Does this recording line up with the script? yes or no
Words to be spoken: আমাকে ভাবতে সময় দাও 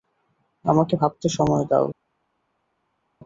yes